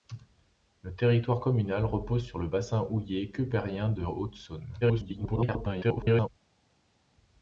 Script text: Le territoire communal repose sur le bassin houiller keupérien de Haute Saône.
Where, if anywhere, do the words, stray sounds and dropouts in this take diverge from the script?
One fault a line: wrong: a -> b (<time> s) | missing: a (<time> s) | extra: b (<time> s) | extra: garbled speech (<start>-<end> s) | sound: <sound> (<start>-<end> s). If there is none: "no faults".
extra: garbled speech (4.8-6.3 s)